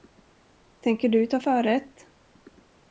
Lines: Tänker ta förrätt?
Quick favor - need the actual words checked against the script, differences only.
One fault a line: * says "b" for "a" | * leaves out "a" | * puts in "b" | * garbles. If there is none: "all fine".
* puts in "du"